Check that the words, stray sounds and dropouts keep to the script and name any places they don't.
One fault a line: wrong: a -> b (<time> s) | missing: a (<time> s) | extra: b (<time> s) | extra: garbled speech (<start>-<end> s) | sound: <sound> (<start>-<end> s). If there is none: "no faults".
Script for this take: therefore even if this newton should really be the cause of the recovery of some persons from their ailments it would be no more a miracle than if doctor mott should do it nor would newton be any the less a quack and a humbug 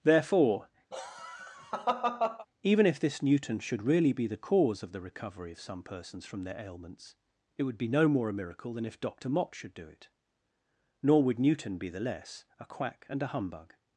sound: laugh (0.9-2.5 s)
missing: any (11.9 s)